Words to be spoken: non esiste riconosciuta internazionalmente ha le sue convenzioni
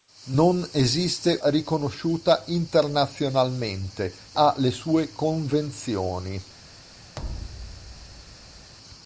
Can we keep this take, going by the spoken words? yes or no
yes